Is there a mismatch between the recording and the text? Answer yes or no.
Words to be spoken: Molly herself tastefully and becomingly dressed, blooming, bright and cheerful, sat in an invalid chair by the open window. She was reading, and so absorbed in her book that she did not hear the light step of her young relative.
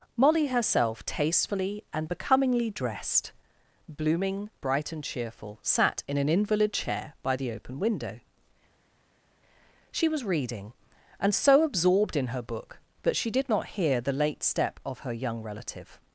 yes